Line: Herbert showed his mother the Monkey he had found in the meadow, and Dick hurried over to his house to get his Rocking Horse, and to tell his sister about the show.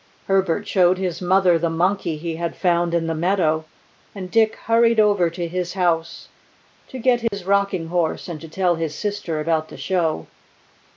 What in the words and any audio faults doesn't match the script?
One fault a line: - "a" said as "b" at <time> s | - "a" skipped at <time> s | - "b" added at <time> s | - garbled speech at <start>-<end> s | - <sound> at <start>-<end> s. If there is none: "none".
- dropout at 7.3-7.3 s